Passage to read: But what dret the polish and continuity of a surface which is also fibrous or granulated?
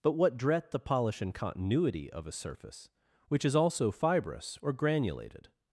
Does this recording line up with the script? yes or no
yes